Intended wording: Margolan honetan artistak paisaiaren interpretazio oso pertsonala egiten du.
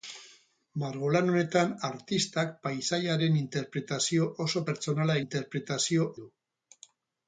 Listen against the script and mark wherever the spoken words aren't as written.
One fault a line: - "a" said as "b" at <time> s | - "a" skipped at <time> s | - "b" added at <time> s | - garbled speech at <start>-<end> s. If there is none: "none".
- "egiten" said as "interpretazio" at 5.2 s